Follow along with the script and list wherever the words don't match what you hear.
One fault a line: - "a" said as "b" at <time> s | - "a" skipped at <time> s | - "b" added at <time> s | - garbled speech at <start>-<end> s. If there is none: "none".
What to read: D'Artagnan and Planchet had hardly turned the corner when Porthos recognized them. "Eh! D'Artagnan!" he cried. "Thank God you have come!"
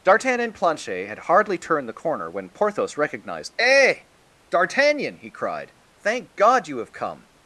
- "them" skipped at 3.5 s